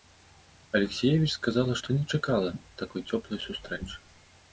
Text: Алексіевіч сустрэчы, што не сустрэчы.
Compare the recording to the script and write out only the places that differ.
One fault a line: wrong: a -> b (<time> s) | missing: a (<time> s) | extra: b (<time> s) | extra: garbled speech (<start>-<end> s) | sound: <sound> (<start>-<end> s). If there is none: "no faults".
wrong: сустрэчы -> сказала (1.3 s)
extra: чакала такой цёплай (2.2 s)